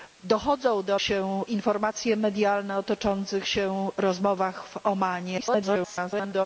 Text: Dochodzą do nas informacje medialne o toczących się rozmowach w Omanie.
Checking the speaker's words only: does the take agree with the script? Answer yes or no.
no